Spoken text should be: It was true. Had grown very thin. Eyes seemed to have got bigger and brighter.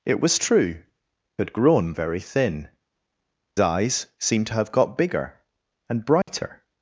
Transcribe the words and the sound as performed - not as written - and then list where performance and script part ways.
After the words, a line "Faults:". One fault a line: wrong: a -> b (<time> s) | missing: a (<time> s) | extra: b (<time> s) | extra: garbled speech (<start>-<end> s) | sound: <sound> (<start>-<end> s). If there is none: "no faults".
It was true. Had grown very thin. Eyes seemed to have got bigger and brighter.
Faults:
sound: dropout (6.2-6.3 s)